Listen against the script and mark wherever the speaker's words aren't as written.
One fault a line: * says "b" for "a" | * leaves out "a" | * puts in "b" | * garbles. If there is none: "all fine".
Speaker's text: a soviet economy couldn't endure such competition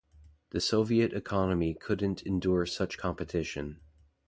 * says "the" for "a"